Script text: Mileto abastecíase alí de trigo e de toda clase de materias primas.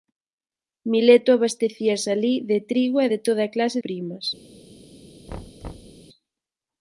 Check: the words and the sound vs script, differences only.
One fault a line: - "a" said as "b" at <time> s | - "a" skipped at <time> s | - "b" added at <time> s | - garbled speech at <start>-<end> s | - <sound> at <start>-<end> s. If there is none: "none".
- "de materias" skipped at 3.8 s
- thud at 5.3-6.0 s